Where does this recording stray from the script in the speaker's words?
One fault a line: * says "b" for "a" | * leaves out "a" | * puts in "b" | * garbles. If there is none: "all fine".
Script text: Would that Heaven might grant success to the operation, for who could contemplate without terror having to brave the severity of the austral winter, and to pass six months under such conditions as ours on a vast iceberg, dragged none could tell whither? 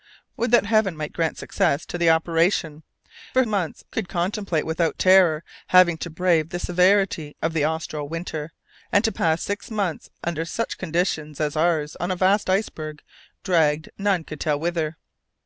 * says "months" for "who"